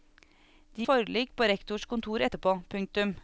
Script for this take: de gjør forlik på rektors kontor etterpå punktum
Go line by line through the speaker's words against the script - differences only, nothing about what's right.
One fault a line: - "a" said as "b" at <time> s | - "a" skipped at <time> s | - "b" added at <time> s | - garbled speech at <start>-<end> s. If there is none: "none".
- "gjør" skipped at 0.9 s